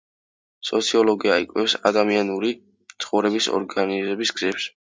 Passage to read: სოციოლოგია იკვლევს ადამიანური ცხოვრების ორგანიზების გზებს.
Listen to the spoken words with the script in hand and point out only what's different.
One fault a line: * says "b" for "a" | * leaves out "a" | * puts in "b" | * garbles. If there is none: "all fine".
all fine